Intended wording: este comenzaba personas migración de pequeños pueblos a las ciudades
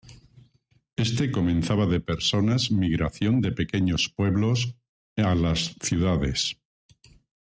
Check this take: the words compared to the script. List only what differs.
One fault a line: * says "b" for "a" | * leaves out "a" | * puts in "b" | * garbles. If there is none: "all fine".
* puts in "de"